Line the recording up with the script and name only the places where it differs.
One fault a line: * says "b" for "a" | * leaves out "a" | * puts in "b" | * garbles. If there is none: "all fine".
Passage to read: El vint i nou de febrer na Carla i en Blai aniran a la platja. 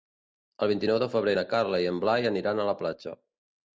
all fine